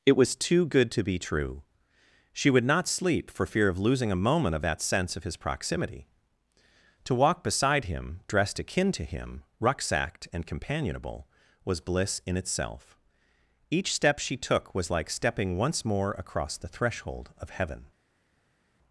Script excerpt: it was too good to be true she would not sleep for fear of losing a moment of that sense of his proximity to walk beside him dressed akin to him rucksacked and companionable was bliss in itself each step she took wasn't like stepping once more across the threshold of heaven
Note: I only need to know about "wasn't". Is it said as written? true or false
false